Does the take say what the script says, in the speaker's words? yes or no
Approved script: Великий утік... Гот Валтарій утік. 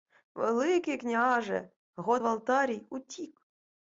no